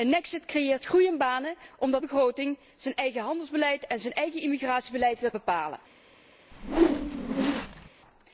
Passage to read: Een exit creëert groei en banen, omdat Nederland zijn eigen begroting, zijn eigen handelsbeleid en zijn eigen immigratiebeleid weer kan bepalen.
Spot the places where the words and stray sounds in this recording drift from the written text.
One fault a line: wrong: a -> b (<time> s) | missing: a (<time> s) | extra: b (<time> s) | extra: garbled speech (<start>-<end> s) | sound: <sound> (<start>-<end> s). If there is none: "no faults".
missing: Nederland zijn eigen (2.0 s)
missing: kan (5.3 s)
sound: whoosh (6.5-7.9 s)